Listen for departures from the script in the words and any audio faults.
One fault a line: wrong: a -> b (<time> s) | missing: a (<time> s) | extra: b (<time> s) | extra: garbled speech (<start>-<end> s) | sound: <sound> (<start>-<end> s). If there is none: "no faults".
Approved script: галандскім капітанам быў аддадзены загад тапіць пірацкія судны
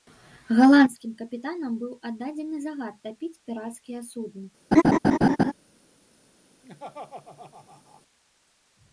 sound: laugh (4.7-5.5 s)
sound: laugh (6.6-8.0 s)